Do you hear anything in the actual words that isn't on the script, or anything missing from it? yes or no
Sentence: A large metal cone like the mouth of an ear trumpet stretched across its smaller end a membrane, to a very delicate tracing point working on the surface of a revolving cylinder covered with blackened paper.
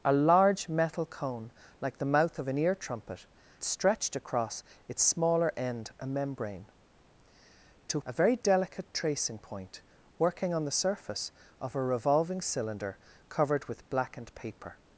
no